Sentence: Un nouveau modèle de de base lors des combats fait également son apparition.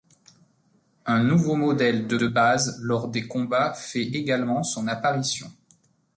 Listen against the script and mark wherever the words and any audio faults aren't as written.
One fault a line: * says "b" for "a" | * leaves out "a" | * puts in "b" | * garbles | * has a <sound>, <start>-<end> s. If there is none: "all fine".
all fine